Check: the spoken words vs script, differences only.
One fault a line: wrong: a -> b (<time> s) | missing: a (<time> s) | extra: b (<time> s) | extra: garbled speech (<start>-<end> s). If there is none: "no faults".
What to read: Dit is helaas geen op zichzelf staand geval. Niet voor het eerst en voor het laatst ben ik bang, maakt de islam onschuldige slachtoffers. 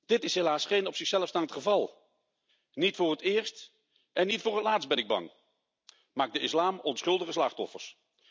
extra: niet (4.3 s)